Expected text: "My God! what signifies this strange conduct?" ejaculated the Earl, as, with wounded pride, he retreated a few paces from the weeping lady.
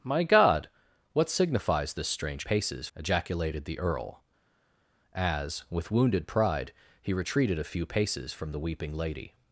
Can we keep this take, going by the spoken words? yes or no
no